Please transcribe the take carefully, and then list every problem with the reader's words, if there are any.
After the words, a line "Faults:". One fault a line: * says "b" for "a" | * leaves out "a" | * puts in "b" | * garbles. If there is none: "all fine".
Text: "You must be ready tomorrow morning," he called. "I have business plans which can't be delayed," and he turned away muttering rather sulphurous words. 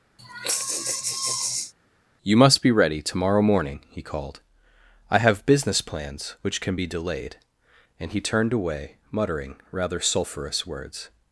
"You must be ready tomorrow morning," he called. "I have business plans which can be delayed," and he turned away muttering rather sulphurous words.
Faults:
* says "can" for "can't"